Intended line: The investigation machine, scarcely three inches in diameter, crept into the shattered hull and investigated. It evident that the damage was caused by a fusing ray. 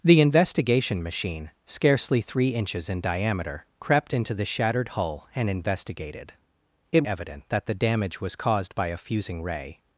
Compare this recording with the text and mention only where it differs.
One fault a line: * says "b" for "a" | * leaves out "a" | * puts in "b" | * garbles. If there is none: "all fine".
all fine